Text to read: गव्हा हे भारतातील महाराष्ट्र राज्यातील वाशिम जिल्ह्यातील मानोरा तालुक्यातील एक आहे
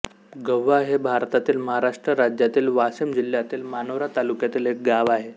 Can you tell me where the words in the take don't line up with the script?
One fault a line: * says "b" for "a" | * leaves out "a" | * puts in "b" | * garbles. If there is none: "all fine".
* puts in "गाव"